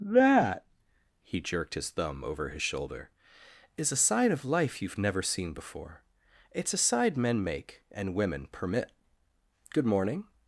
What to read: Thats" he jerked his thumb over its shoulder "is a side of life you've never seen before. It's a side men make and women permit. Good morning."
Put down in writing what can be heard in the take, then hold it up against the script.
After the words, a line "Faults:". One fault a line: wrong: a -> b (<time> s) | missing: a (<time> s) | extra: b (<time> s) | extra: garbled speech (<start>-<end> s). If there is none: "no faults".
That" he jerked his thumb over his shoulder "is a side of life you've never seen before. It's a side men make and women permit. Good morning."
Faults:
wrong: Thats -> That (0.0 s)
wrong: its -> his (2.5 s)